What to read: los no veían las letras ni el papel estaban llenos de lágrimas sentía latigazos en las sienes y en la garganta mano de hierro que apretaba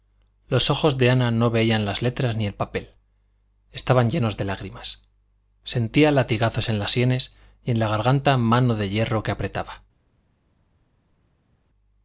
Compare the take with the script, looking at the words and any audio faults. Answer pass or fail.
fail